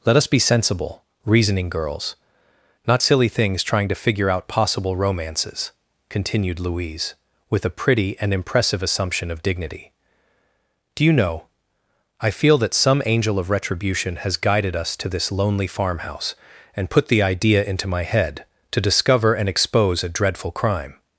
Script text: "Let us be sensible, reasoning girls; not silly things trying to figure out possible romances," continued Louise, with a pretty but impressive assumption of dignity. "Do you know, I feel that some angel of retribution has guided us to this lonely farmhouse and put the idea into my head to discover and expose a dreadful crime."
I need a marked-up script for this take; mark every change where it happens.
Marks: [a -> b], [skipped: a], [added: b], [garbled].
"Let us be sensible, reasoning girls; not silly things trying to figure out possible romances," continued Louise, with a pretty [but -> and] impressive assumption of dignity. "Do you know, I feel that some angel of retribution has guided us to this lonely farmhouse and put the idea into my head to discover and expose a dreadful crime."